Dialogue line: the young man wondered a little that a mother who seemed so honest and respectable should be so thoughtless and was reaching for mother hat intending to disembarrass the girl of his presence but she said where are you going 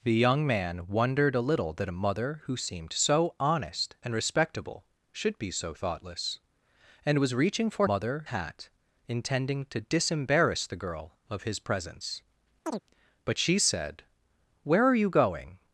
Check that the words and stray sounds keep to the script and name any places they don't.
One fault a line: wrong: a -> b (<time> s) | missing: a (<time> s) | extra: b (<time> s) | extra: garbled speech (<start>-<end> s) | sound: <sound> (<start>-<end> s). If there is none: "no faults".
sound: chirp (12.7-12.8 s)